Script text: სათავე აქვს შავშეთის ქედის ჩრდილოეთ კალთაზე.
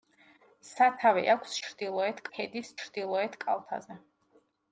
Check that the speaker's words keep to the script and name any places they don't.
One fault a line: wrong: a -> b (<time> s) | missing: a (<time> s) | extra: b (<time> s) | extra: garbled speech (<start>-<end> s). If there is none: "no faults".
wrong: შავშეთის -> ჩრდილოეთ (1.7 s)